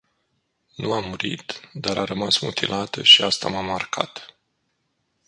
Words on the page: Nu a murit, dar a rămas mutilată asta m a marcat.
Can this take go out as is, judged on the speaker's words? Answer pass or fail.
fail